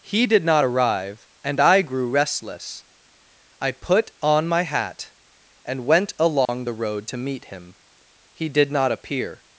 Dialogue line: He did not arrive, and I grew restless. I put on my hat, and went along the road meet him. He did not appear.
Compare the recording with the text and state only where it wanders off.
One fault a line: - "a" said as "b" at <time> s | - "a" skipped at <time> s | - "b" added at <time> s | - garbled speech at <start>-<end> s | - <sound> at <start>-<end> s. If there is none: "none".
- dropout at 6.5-6.5 s
- "to" added at 7.1 s